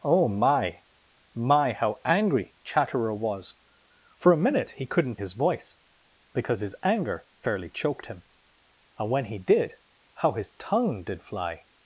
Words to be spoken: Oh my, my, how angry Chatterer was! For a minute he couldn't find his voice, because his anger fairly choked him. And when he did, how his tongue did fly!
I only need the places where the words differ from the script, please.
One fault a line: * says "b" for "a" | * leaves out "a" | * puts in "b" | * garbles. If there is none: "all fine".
* leaves out "find"